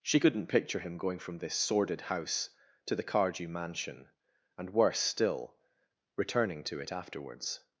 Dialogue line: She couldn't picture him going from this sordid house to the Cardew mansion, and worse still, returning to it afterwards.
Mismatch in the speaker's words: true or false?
false